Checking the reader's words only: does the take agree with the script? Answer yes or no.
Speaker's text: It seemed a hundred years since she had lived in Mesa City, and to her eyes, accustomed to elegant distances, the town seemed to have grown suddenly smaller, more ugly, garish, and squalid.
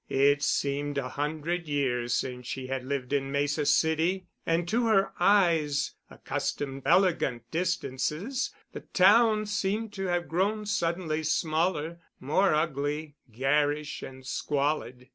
no